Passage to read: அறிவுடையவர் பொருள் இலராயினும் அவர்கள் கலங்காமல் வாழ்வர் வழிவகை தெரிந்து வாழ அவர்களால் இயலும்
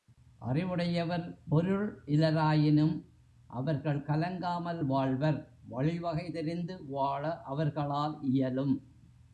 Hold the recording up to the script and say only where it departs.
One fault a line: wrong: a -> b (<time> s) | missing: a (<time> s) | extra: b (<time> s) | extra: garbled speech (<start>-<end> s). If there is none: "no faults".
no faults